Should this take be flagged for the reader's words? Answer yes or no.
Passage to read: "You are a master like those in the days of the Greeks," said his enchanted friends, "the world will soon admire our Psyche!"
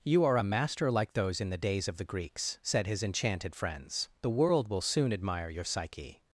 yes